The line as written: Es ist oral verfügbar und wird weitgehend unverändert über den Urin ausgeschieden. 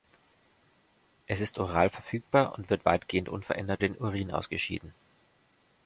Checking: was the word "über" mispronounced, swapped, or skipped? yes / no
yes